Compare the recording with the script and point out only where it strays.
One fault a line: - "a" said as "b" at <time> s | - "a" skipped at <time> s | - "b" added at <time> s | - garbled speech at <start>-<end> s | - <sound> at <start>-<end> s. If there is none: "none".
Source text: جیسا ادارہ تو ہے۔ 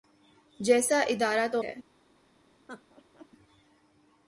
- laugh at 2.7-3.3 s